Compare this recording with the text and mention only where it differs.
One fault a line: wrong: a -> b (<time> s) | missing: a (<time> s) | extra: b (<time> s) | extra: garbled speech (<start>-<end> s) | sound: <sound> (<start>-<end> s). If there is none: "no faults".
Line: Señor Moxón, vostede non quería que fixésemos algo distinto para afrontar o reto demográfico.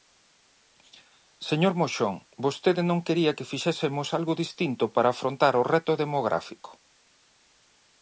no faults